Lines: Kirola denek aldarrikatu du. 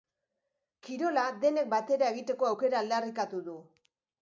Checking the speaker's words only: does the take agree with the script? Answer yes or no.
no